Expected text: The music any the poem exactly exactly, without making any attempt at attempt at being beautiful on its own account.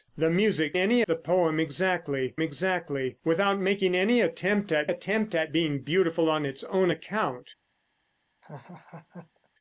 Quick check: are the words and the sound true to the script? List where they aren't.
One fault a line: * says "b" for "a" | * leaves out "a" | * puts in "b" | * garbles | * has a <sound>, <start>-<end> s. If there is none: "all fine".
* has a laugh, 8.4-9.5 s